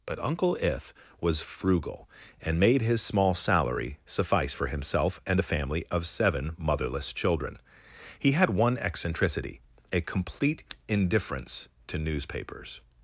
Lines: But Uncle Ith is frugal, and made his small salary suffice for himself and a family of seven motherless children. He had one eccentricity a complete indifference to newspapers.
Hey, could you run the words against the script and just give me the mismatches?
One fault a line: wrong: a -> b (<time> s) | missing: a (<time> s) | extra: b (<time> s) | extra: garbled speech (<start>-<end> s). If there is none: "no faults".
wrong: is -> was (1.2 s)